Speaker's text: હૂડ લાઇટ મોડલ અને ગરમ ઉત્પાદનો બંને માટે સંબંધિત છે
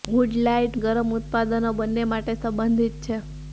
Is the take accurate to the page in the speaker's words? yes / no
no